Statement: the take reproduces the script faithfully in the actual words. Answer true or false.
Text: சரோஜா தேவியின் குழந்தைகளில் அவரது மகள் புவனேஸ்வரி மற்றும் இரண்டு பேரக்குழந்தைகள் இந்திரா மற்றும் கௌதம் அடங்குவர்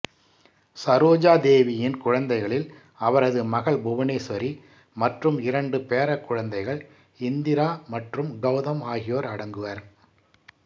false